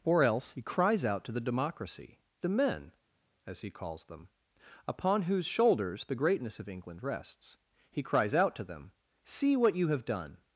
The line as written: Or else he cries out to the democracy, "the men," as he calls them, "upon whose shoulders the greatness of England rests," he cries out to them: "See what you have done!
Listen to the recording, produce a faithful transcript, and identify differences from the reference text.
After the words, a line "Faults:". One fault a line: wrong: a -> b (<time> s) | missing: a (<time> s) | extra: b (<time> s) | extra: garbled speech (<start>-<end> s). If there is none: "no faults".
Or else he cries out to the democracy, "the men," as he calls them, "upon whose shoulders the greatness of England rests," he cries out to them: "See what you have done!
Faults:
no faults